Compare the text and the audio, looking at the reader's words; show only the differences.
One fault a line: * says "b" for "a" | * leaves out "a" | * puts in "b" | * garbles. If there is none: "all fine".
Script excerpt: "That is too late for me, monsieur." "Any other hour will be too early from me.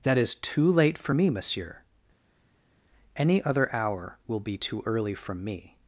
all fine